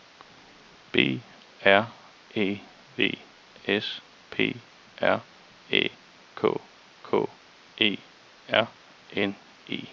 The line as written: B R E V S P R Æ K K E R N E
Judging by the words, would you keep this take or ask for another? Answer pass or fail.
pass